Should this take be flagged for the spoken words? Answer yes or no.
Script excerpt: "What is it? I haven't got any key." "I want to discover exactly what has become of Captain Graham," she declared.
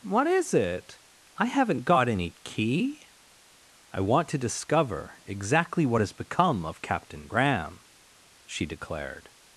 no